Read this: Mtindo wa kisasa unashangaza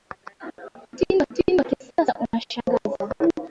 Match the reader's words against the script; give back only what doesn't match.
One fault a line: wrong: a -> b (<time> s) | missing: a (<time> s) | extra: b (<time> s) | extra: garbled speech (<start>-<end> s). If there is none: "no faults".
extra: mtindo (1.3 s)